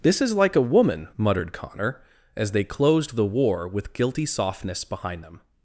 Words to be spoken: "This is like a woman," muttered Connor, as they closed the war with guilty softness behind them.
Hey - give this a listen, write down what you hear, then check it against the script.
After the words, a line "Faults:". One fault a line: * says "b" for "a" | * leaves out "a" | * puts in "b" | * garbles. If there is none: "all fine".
"This is like a woman," muttered Connor, as they closed the war with guilty softness behind them.
Faults:
all fine